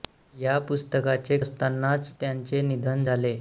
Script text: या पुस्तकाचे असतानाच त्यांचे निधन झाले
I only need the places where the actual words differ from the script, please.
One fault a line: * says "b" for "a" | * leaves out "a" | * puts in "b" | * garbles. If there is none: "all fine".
all fine